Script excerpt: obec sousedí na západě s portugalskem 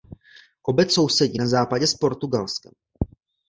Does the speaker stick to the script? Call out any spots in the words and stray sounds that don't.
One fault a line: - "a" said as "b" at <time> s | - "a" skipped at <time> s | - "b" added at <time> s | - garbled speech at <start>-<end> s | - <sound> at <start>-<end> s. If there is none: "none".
none